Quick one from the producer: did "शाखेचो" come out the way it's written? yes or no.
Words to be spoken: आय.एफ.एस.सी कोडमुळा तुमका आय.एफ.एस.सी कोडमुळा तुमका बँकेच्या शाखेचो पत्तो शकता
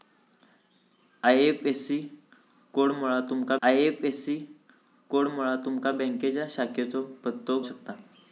yes